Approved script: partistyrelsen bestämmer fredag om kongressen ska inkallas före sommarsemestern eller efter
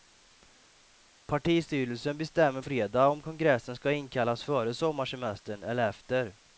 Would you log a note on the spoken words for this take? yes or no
no